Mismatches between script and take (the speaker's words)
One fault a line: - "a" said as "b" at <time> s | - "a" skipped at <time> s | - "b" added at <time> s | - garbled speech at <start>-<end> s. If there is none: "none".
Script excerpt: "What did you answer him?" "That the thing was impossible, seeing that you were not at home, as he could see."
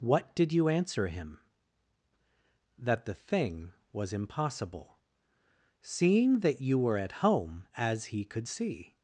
- "not" skipped at 7.0 s